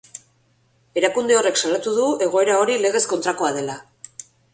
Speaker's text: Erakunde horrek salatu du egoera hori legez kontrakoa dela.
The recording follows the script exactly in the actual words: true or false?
true